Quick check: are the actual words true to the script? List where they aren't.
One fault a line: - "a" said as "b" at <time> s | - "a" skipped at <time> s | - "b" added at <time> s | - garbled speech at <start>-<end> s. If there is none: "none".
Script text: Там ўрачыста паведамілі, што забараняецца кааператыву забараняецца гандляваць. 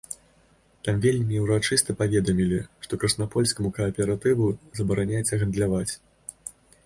- "вельмі" added at 1.0 s
- "забараняецца" said as "краснапольскаму" at 3.0 s